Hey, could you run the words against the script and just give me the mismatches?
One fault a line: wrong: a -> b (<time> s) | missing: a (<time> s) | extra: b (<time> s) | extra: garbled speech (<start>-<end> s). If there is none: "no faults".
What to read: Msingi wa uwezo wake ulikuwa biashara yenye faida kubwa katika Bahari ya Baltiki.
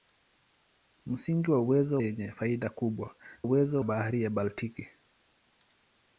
missing: wake ulikuwa biashara (2.0 s)
wrong: katika -> uwezo (3.4 s)